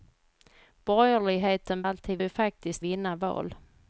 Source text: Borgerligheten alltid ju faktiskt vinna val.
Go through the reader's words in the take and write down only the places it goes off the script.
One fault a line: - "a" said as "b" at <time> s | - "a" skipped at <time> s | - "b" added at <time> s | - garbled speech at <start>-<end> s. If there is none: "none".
none